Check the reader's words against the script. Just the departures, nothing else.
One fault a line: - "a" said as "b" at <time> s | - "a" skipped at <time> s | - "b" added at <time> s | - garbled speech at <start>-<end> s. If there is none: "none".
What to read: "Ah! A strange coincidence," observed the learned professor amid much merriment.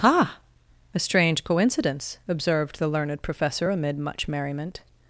none